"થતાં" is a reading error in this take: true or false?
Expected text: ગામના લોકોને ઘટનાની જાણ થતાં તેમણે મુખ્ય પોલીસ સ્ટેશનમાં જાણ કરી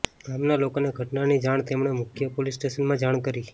true